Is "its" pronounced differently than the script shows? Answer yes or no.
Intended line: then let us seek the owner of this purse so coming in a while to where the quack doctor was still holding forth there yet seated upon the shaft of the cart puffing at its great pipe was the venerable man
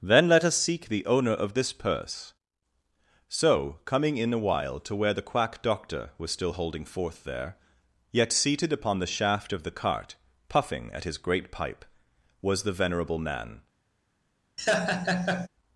yes